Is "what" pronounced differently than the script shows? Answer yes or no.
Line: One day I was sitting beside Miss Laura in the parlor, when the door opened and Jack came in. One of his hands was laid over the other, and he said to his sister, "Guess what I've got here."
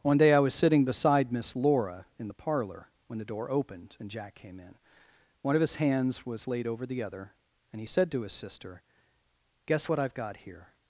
no